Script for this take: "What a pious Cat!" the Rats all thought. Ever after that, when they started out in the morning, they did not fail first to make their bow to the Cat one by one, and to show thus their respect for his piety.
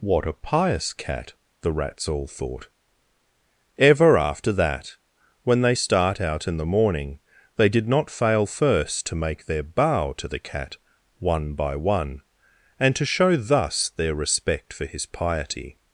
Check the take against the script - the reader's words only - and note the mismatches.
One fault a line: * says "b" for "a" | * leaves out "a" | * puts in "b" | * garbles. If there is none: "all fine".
* says "start" for "started"